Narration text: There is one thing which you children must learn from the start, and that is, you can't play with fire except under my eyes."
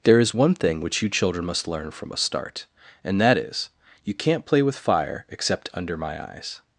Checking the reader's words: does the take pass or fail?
fail